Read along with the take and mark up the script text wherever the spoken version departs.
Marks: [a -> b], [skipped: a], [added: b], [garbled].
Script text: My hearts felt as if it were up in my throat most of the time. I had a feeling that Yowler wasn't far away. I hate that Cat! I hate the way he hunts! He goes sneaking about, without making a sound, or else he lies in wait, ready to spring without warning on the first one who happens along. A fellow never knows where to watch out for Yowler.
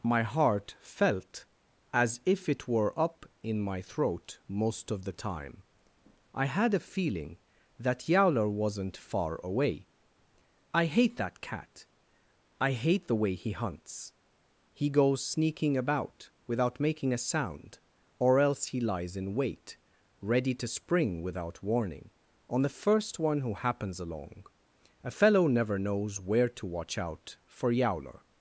My [hearts -> heart] felt as if it were up in my throat most of the time. I had a feeling that Yowler wasn't far away. I hate that Cat! I hate the way he hunts! He goes sneaking about, without making a sound, or else he lies in wait, ready to spring without warning on the first one who happens along. A fellow never knows where to watch out for Yowler.